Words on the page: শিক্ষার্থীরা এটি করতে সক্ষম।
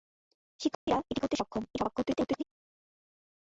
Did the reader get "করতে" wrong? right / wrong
right